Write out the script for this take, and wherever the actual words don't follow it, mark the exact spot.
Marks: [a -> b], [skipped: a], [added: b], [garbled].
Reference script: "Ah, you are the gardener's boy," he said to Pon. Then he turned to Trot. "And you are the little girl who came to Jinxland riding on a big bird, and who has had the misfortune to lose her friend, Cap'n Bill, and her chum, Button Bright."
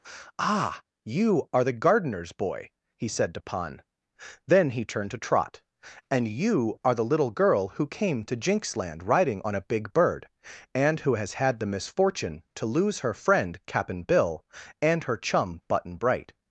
"Ah, you are the gardener's boy," he said to Pon. Then he turned to Trot. "And you are the little girl who came to Jinxland riding on a big bird, and who has had the misfortune to lose her friend, Cap'n Bill, and her chum, Button Bright."